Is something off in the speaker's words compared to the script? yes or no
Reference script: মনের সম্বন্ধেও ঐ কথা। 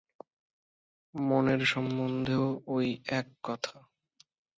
yes